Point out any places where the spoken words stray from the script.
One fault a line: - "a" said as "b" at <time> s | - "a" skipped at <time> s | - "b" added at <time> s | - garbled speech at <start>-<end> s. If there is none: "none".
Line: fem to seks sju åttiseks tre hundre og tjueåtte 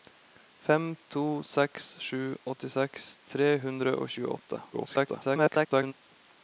- garbled speech at 4.7-5.9 s